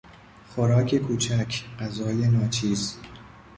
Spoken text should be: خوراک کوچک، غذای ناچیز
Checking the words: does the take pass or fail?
pass